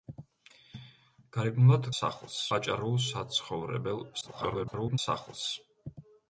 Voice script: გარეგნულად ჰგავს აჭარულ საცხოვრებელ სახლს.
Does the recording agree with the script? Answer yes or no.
no